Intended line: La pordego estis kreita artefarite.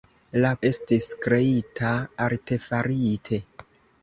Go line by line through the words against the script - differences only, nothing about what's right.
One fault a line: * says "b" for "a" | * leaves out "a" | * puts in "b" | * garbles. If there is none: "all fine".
* leaves out "pordego"